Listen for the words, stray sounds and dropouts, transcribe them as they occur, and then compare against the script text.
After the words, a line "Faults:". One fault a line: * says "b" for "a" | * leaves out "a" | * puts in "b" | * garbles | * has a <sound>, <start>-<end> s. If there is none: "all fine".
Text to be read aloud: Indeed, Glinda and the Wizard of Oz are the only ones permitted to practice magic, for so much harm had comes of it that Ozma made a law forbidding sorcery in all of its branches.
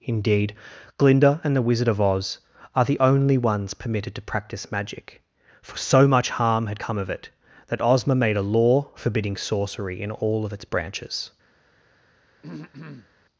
Indeed, Glinda and the Wizard of Oz are the only ones permitted to practice magic, for so much harm had come of it that Ozma made a law forbidding sorcery in all of its branches.
Faults:
* says "come" for "comes"
* has a throat clearing, 12.4-13.1 s